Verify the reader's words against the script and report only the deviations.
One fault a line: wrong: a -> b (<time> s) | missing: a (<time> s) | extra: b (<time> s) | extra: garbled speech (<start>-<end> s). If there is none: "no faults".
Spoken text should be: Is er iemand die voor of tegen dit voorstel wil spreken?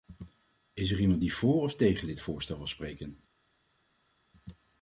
no faults